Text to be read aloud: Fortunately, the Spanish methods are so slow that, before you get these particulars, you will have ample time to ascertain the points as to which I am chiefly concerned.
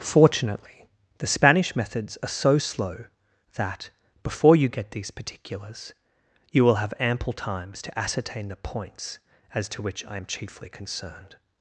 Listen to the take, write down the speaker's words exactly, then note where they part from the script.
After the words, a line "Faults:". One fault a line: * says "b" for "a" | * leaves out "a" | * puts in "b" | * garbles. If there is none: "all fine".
Fortunately, the Spanish methods are so slow that, before you get these particulars, you will have ample times to ascertain the points as to which I am chiefly concerned.
Faults:
* says "times" for "time"